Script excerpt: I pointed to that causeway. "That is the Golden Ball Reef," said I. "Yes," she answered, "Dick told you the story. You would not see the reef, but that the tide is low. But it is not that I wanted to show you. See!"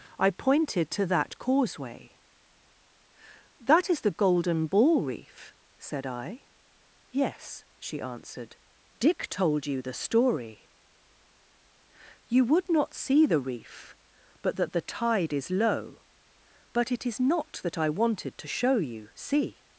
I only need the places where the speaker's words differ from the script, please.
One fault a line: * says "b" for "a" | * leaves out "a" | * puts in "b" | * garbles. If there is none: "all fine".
all fine